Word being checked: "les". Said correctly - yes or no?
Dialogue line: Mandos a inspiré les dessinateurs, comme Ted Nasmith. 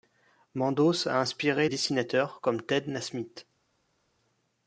no